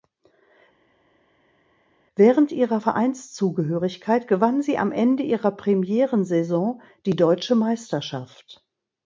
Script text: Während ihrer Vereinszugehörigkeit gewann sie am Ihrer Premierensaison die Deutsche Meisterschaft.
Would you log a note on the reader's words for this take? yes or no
yes